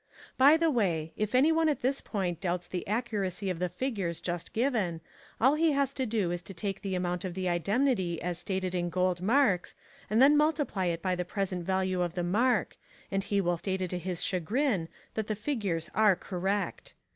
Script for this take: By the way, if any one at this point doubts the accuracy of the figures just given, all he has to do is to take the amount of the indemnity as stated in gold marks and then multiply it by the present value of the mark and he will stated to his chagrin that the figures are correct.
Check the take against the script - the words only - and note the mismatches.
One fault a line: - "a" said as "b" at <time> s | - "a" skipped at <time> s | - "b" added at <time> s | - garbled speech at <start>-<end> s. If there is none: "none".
none